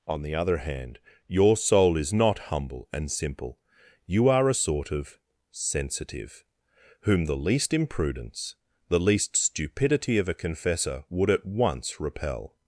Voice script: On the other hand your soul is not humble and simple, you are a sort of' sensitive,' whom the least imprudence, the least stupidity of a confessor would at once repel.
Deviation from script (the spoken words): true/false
false